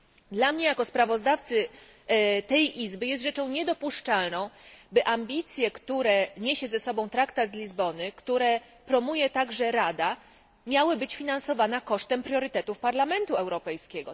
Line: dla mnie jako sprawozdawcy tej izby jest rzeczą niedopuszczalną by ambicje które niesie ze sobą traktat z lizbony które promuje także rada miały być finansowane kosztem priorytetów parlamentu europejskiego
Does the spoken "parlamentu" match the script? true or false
true